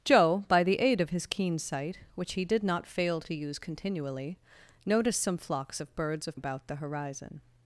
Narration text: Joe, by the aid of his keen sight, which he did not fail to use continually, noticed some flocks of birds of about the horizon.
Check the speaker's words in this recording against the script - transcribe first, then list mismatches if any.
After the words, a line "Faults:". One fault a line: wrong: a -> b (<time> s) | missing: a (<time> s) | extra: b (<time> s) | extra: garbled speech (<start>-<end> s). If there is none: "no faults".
Joe, by the aid of his keen sight, which he did not fail to use continually, noticed some flocks of birds of about the horizon.
Faults:
no faults